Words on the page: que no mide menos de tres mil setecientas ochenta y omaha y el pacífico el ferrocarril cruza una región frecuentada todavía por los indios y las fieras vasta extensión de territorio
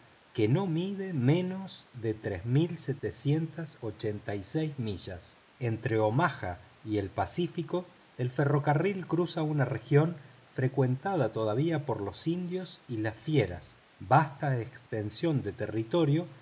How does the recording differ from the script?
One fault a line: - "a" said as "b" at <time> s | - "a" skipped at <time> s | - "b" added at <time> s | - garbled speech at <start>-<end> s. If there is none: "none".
- "seis millas entre" added at 4.4 s